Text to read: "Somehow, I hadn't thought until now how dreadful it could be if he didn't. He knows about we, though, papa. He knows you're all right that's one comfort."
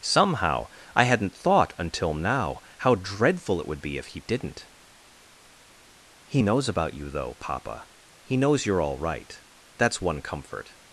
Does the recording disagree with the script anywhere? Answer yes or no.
yes